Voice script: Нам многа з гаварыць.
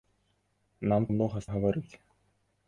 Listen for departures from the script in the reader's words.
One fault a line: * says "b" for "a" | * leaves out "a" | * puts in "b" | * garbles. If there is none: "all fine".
all fine